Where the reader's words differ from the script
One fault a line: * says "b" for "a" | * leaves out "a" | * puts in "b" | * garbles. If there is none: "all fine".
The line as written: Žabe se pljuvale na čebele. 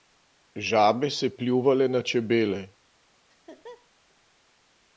all fine